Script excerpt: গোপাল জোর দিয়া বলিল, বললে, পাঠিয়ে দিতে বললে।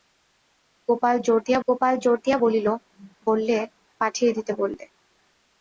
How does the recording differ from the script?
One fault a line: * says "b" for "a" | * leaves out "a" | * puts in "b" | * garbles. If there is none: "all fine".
* puts in "গোপাল জোর দিয়া"